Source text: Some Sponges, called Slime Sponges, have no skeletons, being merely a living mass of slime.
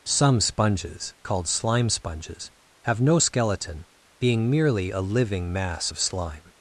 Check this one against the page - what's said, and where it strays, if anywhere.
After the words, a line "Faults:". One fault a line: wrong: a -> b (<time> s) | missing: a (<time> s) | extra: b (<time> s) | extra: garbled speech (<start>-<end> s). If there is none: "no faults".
Some Sponges, called Slime Sponges, have no skeleton, being merely a living mass of slime.
Faults:
wrong: skeletons -> skeleton (3.2 s)